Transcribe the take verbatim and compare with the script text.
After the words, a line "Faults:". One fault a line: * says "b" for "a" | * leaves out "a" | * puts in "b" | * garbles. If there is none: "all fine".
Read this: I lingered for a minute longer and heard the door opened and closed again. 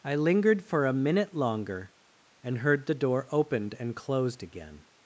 I lingered for a minute longer and heard the door opened and closed again.
Faults:
all fine